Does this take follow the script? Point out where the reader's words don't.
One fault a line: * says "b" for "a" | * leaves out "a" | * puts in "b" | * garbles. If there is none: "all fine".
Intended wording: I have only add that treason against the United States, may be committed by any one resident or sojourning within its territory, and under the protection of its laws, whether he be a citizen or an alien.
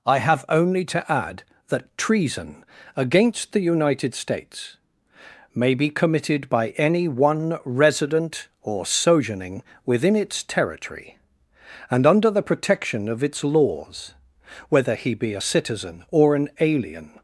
* puts in "to"